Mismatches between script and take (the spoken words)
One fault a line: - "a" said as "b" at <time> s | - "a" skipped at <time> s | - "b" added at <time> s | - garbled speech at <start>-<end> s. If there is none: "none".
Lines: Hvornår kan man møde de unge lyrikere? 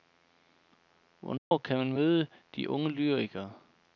none